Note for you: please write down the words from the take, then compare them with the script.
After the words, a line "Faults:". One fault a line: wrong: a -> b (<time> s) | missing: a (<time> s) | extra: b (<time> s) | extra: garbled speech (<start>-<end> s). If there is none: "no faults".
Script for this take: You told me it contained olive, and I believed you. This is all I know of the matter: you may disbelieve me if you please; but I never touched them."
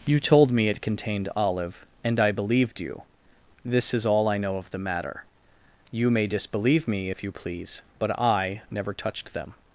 You told me it contained olive, and I believed you. This is all I know of the matter: you may disbelieve me if you please; but I never touched them."
Faults:
no faults